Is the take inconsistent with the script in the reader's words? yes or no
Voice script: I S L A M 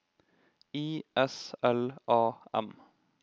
no